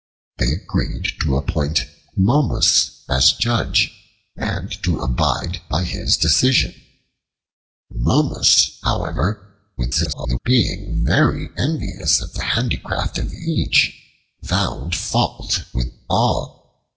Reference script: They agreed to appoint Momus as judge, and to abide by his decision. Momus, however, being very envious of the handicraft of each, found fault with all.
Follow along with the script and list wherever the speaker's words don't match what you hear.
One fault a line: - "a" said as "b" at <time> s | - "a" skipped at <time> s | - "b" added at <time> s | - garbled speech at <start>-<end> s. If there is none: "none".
- garbled speech at 9.8-10.4 s